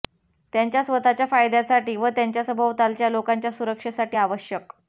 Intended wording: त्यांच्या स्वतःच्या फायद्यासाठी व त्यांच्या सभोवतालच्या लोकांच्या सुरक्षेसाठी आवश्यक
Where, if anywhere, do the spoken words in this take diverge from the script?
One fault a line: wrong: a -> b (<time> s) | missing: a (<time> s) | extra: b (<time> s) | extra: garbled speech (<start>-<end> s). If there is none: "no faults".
no faults